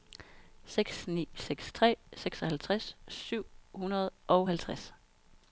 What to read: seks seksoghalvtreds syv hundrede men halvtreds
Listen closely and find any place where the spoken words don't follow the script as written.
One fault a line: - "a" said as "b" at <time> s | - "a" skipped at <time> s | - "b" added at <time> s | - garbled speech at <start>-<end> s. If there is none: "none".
- "ni seks tre" added at 1.1 s
- "men" said as "og" at 4.3 s